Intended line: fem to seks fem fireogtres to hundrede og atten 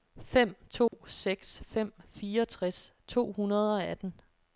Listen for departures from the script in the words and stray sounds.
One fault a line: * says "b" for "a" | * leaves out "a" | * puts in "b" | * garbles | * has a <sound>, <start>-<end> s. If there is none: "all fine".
* has a dropout, 0.9-0.9 s